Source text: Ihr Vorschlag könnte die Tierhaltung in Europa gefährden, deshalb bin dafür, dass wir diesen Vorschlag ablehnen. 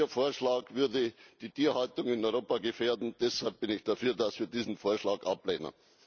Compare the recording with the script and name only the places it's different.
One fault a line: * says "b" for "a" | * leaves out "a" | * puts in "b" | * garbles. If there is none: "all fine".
* says "würde" for "könnte"
* puts in "ich"